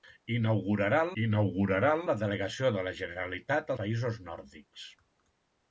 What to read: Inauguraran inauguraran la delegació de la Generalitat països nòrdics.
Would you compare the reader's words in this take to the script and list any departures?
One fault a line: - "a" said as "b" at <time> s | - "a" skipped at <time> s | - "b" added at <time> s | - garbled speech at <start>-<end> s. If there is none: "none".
none